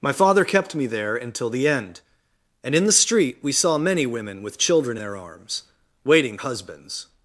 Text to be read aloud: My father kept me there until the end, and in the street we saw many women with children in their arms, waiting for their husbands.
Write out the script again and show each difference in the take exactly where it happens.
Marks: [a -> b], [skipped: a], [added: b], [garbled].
My father kept me there until the end, and in the street we saw many women with children [skipped: in] their arms, waiting [skipped: for their] husbands.